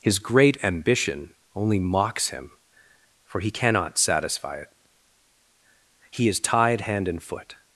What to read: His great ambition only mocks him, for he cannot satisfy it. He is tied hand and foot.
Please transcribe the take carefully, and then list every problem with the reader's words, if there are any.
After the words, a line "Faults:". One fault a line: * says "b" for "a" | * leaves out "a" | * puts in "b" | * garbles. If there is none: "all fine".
His great ambition only mocks him, for he cannot satisfy it. He is tied hand and foot.
Faults:
all fine